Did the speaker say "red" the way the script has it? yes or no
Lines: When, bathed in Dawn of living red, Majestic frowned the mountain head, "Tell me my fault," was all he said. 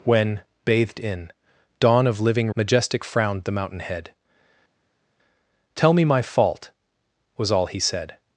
no